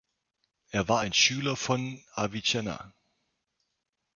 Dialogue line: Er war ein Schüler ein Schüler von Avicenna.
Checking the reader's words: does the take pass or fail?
fail